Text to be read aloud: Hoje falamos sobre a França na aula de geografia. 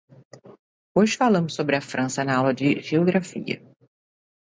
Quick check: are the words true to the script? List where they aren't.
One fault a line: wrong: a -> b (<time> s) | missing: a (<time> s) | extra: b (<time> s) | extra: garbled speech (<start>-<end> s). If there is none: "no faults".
no faults